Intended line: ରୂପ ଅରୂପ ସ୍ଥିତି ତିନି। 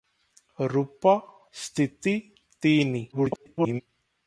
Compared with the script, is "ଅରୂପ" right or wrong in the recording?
wrong